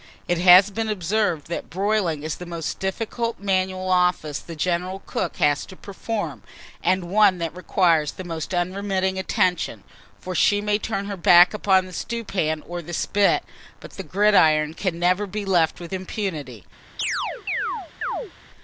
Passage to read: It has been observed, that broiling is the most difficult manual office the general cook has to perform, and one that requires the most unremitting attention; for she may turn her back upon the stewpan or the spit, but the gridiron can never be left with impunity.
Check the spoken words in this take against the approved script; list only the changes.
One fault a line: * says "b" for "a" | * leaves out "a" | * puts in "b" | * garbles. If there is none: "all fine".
all fine